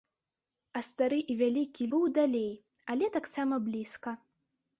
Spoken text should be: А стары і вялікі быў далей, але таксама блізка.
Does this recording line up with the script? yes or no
yes